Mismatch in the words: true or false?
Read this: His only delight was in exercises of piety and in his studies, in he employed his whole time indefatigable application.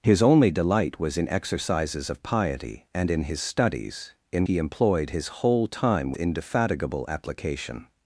false